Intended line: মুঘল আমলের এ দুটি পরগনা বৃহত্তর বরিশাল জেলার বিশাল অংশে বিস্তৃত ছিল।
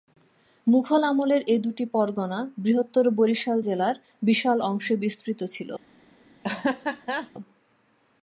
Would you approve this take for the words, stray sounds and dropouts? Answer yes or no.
no